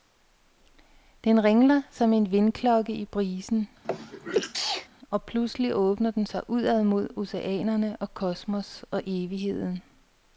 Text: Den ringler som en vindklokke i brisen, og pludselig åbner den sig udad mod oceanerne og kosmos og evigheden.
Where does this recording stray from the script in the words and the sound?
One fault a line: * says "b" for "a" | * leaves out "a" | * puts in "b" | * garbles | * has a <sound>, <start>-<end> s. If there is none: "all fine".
* has a sneeze, 3.8-4.9 s